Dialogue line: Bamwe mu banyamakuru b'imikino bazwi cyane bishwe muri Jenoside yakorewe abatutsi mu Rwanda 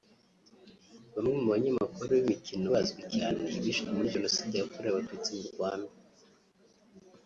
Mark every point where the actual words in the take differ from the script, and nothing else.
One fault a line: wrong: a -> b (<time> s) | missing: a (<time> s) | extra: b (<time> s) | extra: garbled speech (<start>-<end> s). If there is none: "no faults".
no faults